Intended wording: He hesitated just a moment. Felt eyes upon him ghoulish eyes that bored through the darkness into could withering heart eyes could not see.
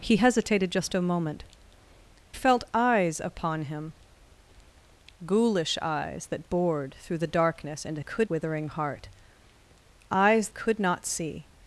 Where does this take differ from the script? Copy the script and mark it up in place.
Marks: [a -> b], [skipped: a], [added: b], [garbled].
He hesitated just a moment. Felt eyes upon him ghoulish eyes that bored through the darkness into could withering heart eyes could not see.